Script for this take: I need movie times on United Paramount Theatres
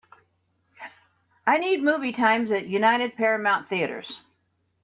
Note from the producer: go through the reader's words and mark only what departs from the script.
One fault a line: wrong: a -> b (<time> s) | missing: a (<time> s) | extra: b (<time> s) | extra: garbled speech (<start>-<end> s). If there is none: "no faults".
wrong: on -> at (2.5 s)